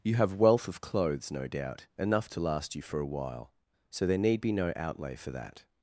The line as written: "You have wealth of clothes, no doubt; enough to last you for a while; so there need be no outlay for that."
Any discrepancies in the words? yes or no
no